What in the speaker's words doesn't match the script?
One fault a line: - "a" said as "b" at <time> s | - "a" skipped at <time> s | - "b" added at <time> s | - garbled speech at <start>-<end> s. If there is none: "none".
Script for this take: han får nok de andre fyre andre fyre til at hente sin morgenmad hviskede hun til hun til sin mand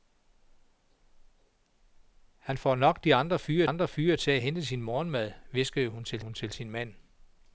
none